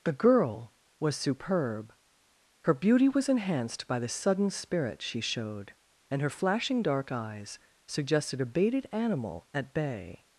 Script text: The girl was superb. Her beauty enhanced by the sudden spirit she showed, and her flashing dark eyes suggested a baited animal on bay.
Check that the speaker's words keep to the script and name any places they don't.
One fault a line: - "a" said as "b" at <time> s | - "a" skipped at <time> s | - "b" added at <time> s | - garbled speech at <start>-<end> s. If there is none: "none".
- "was" added at 3.1 s
- "on" said as "at" at 9.5 s